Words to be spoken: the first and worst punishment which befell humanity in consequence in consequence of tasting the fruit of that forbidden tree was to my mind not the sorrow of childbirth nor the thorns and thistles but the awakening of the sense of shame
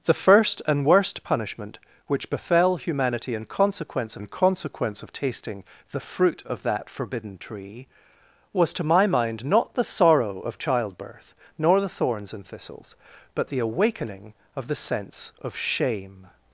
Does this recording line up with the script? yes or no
yes